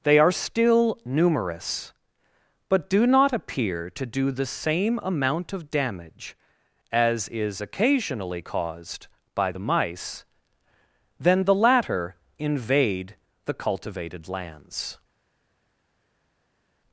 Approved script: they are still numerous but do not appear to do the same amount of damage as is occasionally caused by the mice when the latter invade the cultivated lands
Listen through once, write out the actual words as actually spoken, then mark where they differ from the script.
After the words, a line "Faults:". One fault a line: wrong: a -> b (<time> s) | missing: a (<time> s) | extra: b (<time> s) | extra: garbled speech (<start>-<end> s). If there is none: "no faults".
they are still numerous but do not appear to do the same amount of damage as is occasionally caused by the mice then the latter invade the cultivated lands
Faults:
wrong: when -> then (11.2 s)